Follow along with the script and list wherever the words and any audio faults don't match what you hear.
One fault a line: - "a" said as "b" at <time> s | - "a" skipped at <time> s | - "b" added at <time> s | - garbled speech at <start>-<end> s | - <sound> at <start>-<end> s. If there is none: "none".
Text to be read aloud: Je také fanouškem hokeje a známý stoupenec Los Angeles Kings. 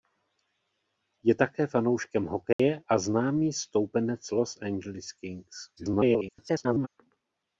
- dropout at 2.5-2.6 s
- garbled speech at 5.8-6.9 s